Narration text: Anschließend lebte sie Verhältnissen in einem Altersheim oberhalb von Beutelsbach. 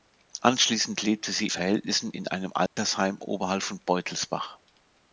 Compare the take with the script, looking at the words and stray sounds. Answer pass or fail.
fail